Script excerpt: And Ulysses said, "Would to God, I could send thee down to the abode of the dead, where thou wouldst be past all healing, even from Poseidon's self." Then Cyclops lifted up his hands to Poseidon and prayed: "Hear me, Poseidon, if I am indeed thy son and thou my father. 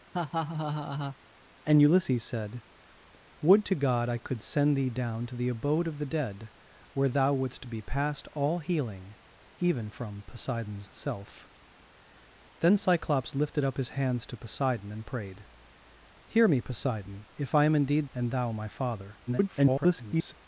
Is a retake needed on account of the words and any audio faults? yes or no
yes